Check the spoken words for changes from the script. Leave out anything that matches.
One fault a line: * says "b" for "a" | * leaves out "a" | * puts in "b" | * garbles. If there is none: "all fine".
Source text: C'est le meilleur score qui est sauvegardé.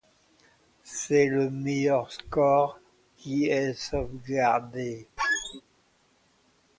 all fine